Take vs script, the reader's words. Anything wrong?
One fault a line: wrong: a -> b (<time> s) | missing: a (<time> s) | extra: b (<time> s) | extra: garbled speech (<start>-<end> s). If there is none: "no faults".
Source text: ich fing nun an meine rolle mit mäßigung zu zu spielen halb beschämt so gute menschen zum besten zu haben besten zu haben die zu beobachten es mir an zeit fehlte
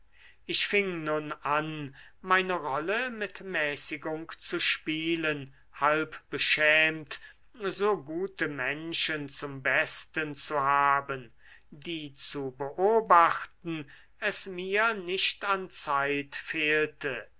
missing: zu (4.6 s)
missing: besten zu haben (11.3 s)
extra: nicht (14.9 s)